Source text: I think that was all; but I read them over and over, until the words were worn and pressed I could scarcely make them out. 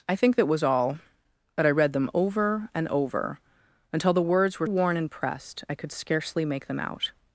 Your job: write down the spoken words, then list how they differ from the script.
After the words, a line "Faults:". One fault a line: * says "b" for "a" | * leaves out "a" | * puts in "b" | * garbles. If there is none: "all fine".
I think that was all; but I read them over and over, until the words were worn and pressed I could scarcely make them out.
Faults:
all fine